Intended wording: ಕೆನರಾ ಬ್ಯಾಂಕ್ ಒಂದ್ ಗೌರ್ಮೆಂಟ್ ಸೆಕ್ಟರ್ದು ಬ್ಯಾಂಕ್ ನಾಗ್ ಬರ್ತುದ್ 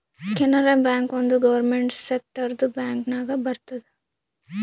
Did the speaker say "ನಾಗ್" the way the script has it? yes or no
yes